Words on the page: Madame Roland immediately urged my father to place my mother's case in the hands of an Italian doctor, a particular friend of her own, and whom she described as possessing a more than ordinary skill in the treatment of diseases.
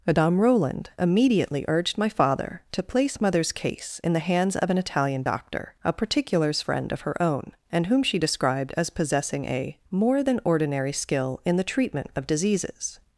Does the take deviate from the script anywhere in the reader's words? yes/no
yes